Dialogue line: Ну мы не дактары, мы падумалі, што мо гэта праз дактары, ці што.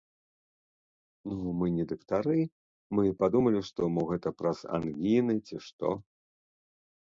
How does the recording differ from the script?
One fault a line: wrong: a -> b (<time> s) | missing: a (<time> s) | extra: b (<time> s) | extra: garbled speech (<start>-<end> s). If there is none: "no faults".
wrong: дактары -> ангіны (4.8 s)